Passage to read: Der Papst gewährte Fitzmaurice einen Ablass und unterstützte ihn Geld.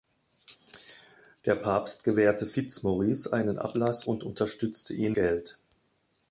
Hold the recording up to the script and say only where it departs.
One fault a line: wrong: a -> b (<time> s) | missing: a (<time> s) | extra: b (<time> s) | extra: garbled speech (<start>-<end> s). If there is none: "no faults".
no faults